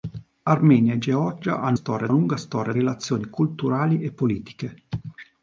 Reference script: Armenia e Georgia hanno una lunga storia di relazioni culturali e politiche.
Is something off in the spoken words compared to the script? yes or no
yes